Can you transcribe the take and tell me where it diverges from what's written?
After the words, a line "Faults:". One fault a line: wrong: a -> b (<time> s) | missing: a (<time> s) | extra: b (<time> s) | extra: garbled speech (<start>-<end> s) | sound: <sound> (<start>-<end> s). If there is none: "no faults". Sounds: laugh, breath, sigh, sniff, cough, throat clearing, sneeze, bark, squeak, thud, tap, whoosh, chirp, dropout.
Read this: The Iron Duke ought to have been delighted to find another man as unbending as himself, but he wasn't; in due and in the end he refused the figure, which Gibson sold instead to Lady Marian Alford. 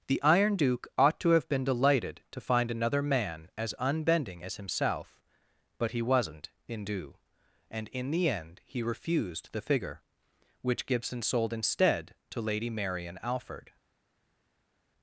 The Iron Duke ought to have been delighted to find another man as unbending as himself, but he wasn't; in due and in the end he refused the figure, which Gibson sold instead to Lady Marian Alford.
Faults:
no faults